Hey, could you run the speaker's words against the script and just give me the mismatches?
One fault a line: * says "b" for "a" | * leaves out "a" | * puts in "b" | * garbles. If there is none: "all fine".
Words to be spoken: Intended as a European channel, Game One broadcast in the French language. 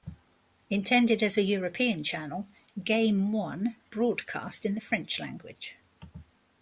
all fine